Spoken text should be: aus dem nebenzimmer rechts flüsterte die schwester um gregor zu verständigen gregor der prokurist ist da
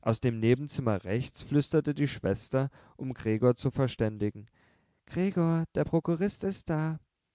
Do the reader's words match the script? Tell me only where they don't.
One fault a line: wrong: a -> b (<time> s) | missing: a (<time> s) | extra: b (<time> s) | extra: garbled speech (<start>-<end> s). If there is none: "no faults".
no faults